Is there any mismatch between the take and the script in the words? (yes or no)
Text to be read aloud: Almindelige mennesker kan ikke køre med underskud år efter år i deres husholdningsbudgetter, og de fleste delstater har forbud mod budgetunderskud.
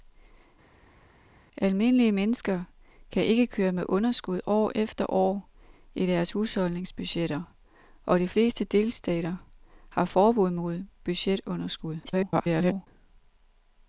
yes